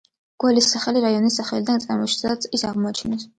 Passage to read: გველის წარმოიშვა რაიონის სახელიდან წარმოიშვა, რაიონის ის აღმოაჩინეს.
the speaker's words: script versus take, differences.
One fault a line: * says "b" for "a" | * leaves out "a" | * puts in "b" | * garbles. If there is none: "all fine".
* says "სახელი" for "წარმოიშვა"
* says "სადაც" for "რაიონის"